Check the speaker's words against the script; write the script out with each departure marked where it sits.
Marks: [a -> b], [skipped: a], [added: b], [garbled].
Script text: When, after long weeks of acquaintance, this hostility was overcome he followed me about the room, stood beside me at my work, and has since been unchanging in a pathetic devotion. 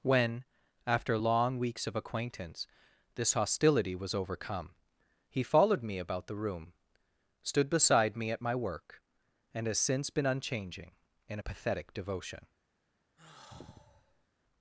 When, after long weeks of acquaintance, this hostility was overcome he followed me about the room, stood beside me at my work, and has since been unchanging in a pathetic devotion.